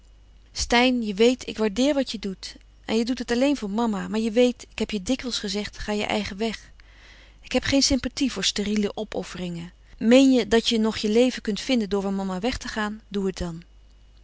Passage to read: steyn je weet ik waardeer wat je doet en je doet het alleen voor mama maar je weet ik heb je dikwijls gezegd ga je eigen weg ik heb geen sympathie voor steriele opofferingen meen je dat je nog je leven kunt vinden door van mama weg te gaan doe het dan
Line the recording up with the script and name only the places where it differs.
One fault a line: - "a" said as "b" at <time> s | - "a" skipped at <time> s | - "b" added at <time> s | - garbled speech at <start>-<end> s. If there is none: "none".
none